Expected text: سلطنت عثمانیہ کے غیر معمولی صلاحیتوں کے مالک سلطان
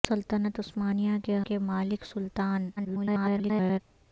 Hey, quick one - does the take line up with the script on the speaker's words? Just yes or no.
no